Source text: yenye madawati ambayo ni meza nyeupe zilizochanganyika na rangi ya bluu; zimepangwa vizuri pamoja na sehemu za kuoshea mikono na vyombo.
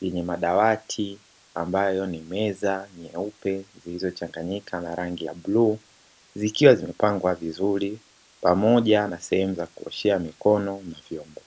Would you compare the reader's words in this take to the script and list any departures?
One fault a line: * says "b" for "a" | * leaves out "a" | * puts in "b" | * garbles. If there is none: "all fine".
* puts in "zikiwa"